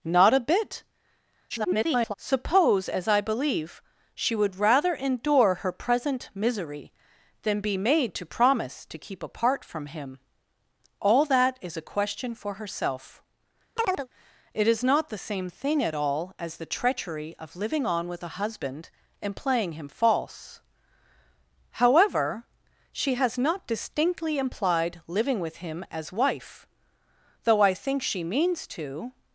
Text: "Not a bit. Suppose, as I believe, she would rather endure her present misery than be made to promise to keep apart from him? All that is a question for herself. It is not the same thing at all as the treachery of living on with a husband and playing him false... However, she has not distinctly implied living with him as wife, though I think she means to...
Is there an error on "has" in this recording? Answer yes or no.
no